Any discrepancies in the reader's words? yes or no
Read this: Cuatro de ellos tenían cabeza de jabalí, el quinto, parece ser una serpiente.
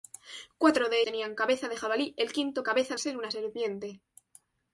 yes